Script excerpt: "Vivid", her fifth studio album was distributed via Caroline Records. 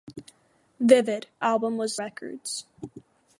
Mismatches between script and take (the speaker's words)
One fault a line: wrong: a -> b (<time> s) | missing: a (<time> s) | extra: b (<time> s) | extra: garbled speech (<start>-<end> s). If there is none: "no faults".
missing: her fifth studio (1.3 s)
missing: distributed via Caroline (2.0 s)